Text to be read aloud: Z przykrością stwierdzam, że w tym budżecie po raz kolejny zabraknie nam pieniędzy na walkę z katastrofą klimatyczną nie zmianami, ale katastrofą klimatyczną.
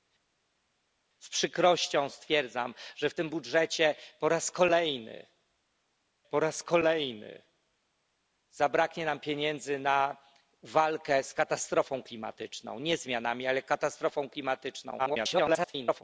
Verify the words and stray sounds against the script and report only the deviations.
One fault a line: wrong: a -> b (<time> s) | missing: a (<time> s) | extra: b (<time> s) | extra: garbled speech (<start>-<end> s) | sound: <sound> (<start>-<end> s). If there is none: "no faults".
extra: po raz kolejny (6.3 s)
extra: garbled speech (15.0-16.0 s)